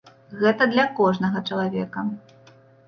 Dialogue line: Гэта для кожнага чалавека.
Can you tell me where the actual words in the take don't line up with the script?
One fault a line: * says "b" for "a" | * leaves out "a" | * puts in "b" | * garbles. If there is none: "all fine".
all fine